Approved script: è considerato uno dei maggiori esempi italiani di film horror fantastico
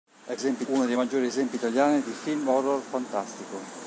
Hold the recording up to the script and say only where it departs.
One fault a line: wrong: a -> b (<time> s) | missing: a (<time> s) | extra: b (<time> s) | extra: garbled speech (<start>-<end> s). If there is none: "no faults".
wrong: considerato -> esempi (0.3 s)